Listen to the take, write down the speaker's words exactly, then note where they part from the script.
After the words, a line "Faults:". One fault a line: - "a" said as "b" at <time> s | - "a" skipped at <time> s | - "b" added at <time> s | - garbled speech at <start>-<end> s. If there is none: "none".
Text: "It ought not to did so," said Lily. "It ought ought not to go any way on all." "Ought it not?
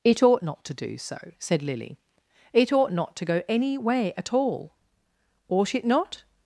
"It ought not to do so," said Lily. "It ought not to go any way at all." "Ought it not?
Faults:
- "did" said as "do" at 0.7 s
- "ought" skipped at 2.9 s
- "on" said as "at" at 4.2 s